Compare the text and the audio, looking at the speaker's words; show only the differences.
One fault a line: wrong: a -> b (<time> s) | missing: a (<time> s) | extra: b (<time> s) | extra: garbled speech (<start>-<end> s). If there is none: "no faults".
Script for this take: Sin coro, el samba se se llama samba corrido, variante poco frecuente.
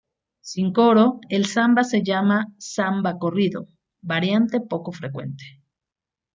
missing: se (2.0 s)